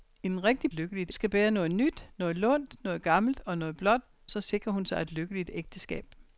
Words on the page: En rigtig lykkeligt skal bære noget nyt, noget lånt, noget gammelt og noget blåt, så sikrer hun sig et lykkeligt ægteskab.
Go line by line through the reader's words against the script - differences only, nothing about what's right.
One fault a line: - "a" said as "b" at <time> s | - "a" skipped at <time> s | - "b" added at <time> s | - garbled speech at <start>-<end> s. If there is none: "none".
none